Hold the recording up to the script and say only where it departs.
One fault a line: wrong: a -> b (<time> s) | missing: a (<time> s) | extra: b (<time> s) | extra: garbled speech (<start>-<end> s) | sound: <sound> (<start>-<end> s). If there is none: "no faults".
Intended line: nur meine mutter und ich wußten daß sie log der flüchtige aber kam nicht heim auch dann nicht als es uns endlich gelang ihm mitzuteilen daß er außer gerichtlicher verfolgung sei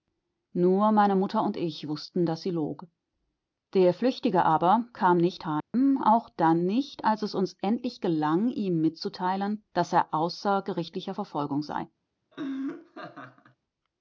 sound: dropout (5.6-5.7 s)
sound: laugh (12.3-13.6 s)